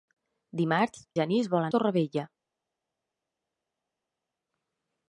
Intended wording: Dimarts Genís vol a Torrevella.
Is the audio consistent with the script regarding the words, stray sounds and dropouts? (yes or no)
yes